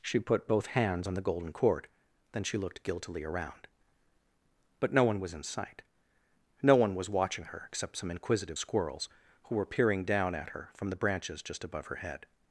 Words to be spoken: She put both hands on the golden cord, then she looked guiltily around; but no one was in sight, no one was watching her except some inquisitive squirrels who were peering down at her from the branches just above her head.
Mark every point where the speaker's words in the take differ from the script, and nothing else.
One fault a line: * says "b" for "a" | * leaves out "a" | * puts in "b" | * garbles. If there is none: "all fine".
all fine